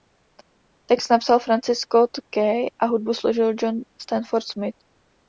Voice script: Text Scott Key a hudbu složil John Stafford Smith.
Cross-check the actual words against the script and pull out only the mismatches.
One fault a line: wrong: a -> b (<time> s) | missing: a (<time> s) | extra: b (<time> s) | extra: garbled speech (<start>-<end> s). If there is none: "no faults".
extra: napsal Francis (1.1 s)